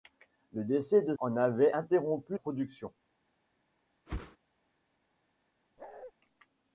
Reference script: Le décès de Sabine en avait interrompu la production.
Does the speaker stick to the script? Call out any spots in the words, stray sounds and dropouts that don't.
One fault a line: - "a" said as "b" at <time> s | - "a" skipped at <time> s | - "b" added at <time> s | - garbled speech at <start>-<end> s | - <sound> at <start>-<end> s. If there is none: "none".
- "Sabine" skipped at 1.1 s
- "la" skipped at 2.4 s
- whoosh at 4.1-4.4 s
- bark at 5.8-6.1 s